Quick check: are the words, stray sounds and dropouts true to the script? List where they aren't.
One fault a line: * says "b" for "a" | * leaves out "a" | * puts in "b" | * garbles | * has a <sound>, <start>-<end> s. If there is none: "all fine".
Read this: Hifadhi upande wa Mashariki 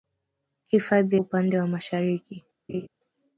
* has a laugh, 2.7-2.9 s